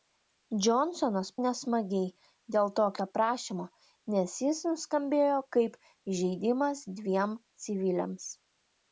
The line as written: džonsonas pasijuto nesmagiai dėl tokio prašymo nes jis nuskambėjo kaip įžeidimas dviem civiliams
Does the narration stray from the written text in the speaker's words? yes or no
yes